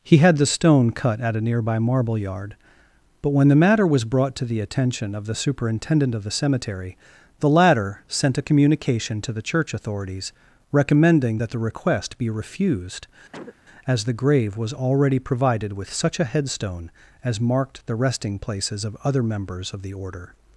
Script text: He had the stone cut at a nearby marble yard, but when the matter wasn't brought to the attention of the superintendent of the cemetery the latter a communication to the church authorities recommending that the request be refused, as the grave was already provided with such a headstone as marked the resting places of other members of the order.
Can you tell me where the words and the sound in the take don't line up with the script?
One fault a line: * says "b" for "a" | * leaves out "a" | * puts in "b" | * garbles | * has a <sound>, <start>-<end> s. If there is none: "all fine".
* says "was" for "wasn't"
* puts in "sent"
* has a cough, 13.3-13.6 s